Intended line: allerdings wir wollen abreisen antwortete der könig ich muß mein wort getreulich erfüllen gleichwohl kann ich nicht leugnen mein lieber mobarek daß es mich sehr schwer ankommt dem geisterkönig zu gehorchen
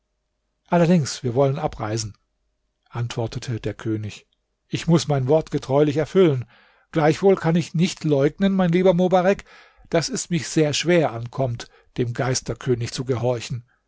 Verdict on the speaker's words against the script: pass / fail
pass